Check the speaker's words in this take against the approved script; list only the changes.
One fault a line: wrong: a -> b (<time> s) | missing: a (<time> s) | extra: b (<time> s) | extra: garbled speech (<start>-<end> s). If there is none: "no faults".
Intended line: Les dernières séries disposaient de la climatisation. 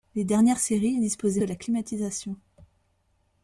no faults